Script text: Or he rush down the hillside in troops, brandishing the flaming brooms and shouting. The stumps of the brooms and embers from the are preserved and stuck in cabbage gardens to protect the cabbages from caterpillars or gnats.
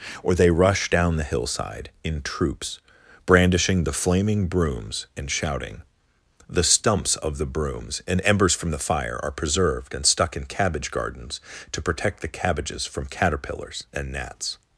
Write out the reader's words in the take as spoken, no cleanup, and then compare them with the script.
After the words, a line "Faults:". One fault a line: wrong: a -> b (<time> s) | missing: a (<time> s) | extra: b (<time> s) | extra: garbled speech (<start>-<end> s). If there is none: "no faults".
Or they rush down the hillside in troops, brandishing the flaming brooms and shouting. The stumps of the brooms and embers from the fire are preserved and stuck in cabbage gardens to protect the cabbages from caterpillars and gnats.
Faults:
wrong: he -> they (0.3 s)
extra: fire (8.8 s)
wrong: or -> and (13.9 s)